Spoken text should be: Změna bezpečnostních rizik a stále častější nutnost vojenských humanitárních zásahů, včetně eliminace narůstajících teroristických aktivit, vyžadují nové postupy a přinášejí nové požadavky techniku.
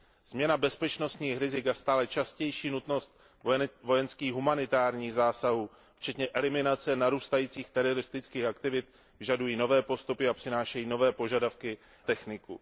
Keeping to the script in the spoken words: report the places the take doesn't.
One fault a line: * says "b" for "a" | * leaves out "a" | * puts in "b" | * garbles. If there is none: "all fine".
all fine